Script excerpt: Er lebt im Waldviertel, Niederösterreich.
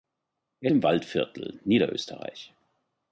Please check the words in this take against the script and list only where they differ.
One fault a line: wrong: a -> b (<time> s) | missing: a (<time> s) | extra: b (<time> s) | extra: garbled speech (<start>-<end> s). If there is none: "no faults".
missing: lebt (0.7 s)